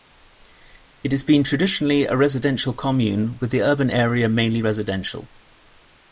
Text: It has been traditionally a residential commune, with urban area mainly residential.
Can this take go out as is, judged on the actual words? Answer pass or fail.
fail